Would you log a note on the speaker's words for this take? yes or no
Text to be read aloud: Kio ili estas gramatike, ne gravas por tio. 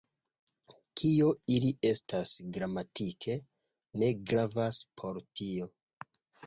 no